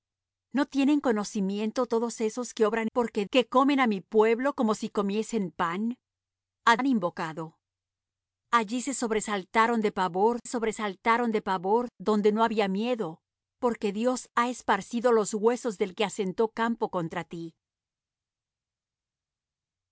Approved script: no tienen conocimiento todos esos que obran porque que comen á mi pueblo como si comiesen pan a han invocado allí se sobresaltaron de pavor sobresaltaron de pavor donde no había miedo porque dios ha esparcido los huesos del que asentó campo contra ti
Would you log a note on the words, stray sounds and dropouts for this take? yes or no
no